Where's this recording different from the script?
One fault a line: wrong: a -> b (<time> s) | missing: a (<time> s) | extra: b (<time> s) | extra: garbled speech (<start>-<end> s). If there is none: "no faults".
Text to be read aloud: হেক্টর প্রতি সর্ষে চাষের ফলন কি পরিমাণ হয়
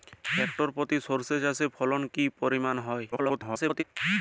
extra: garbled speech (3.1-3.8 s)